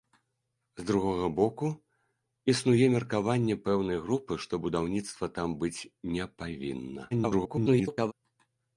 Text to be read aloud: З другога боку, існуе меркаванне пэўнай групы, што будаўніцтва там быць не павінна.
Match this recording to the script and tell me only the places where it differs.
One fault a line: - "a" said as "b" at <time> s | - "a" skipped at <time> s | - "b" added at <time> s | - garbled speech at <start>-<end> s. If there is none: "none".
- garbled speech at 7.1-8.1 s